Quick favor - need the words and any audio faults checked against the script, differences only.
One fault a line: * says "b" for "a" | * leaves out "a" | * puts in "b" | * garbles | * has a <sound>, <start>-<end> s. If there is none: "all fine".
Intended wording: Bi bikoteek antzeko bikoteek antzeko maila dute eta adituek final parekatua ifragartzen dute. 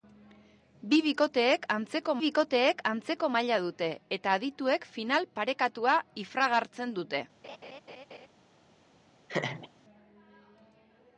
* has a laugh, 7.4-8.3 s
* has a laugh, 9.3-9.7 s